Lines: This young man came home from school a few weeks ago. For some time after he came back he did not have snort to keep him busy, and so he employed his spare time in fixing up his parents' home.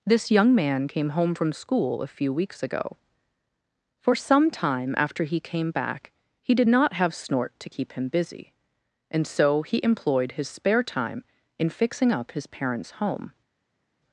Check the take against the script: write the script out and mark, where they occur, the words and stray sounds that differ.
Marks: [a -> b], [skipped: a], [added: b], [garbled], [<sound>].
This young man came home from school a few weeks ago. For some time after he came back he did not have snort to keep him busy, and so he employed his spare time in fixing up his parents' home.